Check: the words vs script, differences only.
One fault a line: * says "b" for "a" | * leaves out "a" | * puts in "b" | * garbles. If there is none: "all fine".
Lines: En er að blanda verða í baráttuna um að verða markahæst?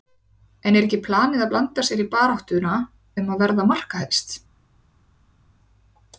* puts in "ekki planið"
* says "sér" for "verða"